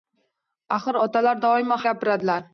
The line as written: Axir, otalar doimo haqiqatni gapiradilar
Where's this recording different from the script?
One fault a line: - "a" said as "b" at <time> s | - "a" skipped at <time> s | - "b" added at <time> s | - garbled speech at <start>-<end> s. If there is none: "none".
- "haqiqatni" skipped at 1.8 s